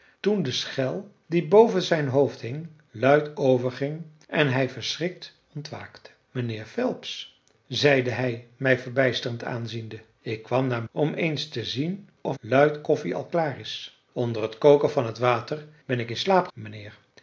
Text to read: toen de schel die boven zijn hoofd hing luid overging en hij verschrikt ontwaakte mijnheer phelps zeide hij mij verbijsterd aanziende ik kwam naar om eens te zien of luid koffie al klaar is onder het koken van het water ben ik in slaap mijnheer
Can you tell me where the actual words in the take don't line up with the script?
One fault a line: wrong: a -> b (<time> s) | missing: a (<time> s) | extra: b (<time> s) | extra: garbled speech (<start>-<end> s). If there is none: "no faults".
no faults